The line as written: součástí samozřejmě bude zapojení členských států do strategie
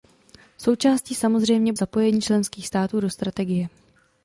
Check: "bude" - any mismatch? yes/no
yes